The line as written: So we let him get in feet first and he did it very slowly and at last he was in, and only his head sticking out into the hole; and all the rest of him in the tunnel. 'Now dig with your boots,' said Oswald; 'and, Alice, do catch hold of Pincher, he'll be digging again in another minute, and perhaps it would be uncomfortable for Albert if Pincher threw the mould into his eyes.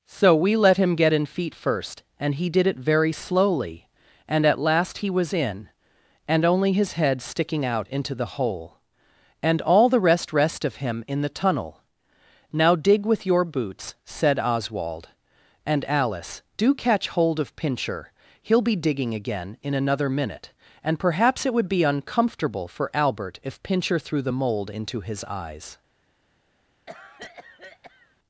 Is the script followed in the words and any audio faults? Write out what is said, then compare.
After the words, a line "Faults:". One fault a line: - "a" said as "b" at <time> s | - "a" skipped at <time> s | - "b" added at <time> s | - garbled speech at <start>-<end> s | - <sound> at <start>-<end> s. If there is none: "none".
So we let him get in feet first and he did it very slowly and at last he was in, and only his head sticking out into the hole; and all the rest rest of him in the tunnel. 'Now dig with your boots,' said Oswald; 'and, Alice, do catch hold of Pincher, he'll be digging again in another minute, and perhaps it would be uncomfortable for Albert if Pincher threw the mould into his eyes.
Faults:
- "rest" added at 10.3 s
- cough at 26.9-28.2 s